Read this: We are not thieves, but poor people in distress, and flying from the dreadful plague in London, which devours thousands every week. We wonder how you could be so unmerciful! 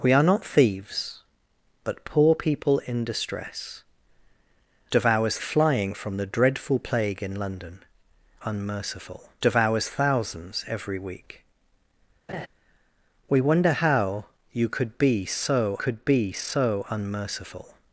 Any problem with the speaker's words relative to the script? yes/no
yes